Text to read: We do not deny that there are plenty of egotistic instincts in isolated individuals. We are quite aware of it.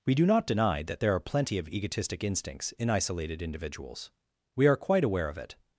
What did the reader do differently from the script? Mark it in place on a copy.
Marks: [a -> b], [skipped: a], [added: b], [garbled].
We do not deny that there are plenty of egotistic instincts in isolated individuals. We are quite aware of it.